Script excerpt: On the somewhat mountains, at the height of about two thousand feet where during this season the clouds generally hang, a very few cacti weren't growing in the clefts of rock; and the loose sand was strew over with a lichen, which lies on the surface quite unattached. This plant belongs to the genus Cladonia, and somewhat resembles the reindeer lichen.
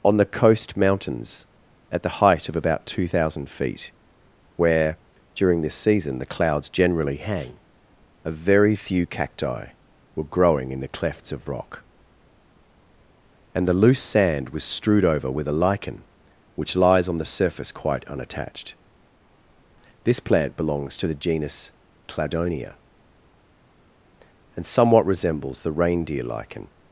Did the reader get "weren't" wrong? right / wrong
wrong